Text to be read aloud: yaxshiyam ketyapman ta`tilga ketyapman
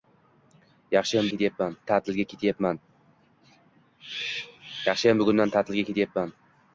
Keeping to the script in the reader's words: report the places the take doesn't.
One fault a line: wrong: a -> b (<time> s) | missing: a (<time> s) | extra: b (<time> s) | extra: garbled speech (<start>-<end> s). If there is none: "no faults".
no faults